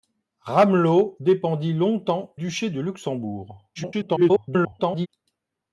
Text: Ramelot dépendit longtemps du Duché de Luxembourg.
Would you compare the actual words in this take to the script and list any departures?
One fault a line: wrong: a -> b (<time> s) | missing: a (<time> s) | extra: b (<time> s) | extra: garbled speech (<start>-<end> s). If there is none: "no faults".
missing: du (2.3 s)
extra: garbled speech (3.8-5.1 s)